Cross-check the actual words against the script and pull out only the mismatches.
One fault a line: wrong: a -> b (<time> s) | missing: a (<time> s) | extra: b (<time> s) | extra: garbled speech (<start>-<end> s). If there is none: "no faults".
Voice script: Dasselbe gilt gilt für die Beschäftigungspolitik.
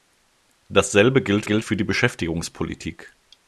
no faults